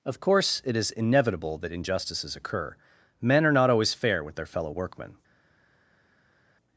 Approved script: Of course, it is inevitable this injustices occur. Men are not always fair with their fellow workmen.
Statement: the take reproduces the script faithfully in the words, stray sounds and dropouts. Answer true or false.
false